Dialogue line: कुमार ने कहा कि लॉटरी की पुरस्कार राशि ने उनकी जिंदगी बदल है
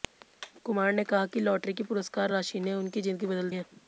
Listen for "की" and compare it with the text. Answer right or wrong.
right